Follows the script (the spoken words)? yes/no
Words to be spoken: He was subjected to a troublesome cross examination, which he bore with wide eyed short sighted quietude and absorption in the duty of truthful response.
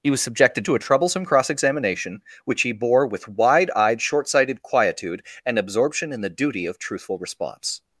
yes